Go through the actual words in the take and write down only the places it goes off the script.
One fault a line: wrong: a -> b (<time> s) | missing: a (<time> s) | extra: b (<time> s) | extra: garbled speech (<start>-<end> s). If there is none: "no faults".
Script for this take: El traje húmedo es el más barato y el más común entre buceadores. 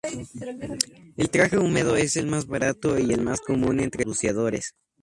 no faults